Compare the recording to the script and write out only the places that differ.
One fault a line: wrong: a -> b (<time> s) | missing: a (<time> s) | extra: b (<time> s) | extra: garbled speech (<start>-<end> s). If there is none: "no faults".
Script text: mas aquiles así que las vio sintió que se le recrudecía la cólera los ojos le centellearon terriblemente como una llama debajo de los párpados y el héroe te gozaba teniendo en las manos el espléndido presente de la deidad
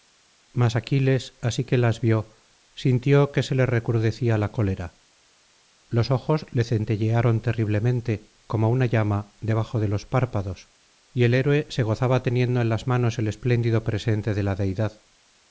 wrong: te -> se (11.7 s)